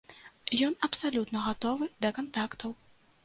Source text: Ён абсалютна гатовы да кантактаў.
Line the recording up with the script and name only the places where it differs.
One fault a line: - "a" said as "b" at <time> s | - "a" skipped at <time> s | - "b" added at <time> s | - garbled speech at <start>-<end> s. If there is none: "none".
none